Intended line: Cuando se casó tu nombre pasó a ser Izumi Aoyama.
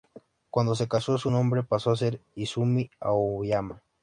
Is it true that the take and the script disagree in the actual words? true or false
true